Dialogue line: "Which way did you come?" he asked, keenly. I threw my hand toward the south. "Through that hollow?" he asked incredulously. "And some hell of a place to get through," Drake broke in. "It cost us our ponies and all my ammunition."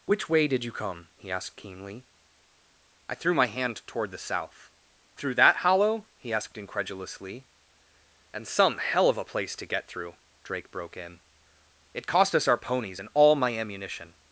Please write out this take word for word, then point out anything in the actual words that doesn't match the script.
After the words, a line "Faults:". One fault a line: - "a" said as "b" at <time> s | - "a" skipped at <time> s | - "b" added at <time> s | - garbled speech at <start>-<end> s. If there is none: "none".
"Which way did you come?" he asked, keenly. I threw my hand toward the south. "Through that hollow?" he asked incredulously. "And some hell of a place to get through," Drake broke in. "It cost us our ponies and all my ammunition."
Faults:
none